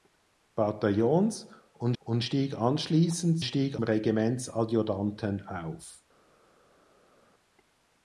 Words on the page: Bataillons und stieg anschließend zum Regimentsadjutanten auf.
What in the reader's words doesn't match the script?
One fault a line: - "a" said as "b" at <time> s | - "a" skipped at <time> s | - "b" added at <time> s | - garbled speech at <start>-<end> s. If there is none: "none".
- "und" added at 2.0 s
- "zum" said as "stieg" at 3.4 s